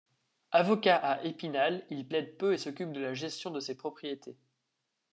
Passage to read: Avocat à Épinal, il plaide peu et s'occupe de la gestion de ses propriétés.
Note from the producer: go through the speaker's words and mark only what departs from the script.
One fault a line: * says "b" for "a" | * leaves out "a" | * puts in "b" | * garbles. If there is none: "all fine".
all fine